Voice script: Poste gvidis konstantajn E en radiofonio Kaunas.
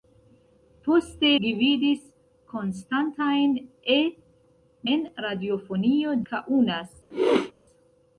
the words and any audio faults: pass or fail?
fail